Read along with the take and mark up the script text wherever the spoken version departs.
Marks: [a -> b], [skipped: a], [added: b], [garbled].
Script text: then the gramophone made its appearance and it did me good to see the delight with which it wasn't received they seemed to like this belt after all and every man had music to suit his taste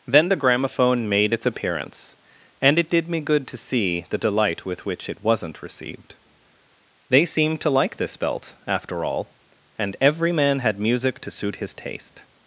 then the gramophone made its appearance and it did me good to see the delight with which it wasn't received they seemed to like this belt after all and every man had music to suit his taste